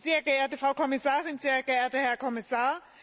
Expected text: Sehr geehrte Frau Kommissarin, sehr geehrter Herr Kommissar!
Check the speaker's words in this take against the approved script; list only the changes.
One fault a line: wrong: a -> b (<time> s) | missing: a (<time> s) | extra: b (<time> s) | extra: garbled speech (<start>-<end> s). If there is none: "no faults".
no faults